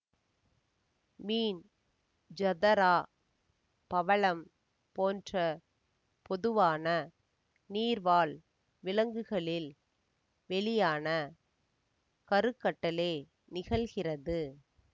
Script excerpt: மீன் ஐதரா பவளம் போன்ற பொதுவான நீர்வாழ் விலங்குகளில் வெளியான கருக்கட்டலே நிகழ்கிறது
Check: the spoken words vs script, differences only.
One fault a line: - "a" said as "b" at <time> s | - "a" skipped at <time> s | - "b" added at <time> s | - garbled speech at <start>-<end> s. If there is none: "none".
none